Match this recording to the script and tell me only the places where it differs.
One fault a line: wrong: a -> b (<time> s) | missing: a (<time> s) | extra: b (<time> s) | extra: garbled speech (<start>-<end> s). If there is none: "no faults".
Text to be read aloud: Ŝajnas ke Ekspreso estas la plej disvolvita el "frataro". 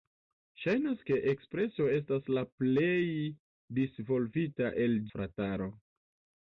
no faults